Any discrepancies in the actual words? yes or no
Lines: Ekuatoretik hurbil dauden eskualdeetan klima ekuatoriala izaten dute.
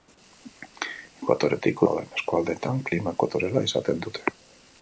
yes